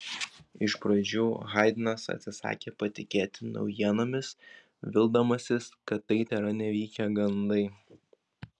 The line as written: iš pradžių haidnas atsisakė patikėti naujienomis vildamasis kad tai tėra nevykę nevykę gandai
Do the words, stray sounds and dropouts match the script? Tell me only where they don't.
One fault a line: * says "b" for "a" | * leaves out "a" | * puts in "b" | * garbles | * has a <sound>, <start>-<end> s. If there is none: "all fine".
* leaves out "nevykę"